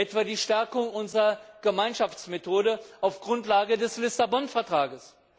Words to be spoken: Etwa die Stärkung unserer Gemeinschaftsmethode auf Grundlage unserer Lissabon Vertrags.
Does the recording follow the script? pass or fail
fail